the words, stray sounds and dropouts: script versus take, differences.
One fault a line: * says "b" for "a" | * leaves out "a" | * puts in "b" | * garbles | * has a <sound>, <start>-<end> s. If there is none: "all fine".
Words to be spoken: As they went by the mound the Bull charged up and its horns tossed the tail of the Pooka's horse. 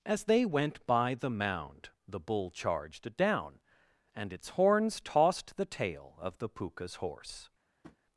* says "down" for "up"
* has a tap, 7.8-8.0 s